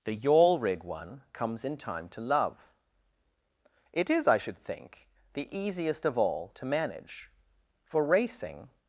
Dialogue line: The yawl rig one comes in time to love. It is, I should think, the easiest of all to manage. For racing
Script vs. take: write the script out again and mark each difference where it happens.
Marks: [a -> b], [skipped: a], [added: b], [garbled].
The yawl rig one comes in time to love. It is, I should think, the easiest of all to manage. For racing